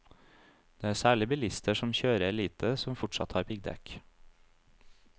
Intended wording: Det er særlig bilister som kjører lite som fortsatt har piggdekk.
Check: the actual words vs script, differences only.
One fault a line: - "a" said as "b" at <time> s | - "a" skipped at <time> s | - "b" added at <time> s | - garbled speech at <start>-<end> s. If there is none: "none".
none